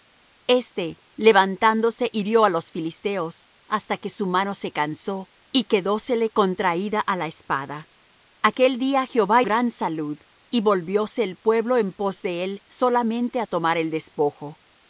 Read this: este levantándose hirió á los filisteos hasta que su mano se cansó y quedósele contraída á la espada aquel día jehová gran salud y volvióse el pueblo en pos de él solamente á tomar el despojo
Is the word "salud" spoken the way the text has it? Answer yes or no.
yes